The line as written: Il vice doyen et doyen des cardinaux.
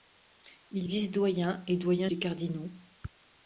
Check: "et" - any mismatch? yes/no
no